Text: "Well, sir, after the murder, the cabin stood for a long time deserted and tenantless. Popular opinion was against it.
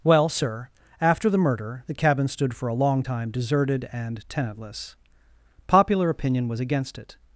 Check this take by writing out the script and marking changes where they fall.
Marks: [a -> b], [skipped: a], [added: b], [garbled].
"Well, sir, after the murder, the cabin stood for a long time deserted and tenantless. Popular opinion was against it.